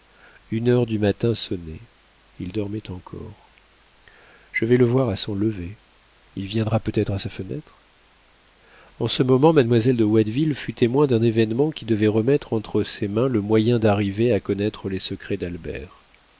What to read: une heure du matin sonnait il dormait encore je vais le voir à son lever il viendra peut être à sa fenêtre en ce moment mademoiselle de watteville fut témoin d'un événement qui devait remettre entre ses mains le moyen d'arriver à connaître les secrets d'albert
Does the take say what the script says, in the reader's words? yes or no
yes